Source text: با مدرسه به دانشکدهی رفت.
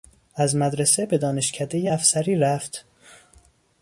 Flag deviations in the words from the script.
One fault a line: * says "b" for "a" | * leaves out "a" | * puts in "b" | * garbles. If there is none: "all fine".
* says "از" for "با"
* puts in "افسری"